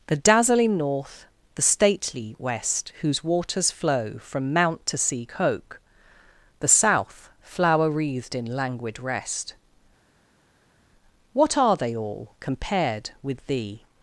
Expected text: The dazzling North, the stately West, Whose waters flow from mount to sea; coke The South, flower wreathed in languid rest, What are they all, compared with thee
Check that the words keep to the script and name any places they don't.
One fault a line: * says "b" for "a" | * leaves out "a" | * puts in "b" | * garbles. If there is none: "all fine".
all fine